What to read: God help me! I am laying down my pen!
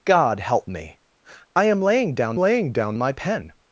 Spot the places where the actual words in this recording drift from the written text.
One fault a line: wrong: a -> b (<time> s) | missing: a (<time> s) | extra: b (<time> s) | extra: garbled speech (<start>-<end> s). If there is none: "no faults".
extra: laying down (2.3 s)